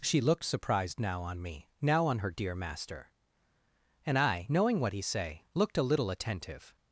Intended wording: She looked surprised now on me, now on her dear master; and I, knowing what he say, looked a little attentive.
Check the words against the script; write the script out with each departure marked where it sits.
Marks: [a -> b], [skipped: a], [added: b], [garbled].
She looked surprised now on me, now on her dear master; and I, knowing what he say, looked a little attentive.